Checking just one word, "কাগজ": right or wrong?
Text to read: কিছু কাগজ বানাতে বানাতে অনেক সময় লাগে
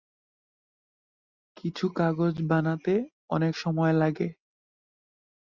right